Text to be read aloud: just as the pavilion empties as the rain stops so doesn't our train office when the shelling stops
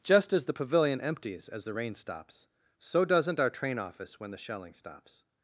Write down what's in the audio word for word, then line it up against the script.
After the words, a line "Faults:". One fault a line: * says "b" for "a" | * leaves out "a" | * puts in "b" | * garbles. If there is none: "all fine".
just as the pavilion empties as the rain stops so doesn't our train office when the shelling stops
Faults:
all fine